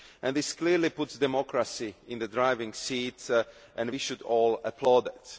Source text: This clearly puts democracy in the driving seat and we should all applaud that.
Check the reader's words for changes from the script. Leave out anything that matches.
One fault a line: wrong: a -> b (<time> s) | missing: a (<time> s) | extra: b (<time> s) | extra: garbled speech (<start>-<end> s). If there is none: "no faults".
no faults